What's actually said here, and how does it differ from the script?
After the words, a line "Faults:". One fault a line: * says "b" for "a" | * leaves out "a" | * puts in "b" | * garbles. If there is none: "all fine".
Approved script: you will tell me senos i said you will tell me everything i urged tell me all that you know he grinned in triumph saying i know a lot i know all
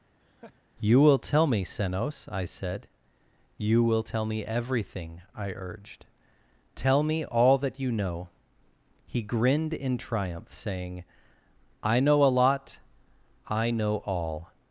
you will tell me senos i said you will tell me everything i urged tell me all that you know he grinned in triumph saying i know a lot i know all
Faults:
all fine